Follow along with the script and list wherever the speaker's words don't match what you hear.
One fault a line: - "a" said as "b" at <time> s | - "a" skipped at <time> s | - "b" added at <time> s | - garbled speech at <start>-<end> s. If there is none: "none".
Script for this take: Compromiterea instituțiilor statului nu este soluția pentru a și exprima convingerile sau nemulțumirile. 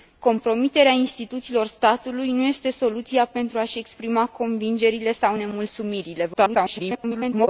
- garbled speech at 6.3-7.5 s